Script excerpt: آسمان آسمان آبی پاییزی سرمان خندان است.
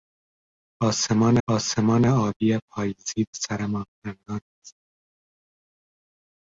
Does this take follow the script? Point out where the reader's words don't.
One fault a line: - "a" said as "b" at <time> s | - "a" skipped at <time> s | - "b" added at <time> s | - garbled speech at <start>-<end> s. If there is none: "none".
none